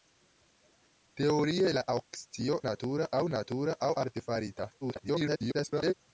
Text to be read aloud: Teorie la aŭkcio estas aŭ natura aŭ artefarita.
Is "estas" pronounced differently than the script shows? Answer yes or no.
yes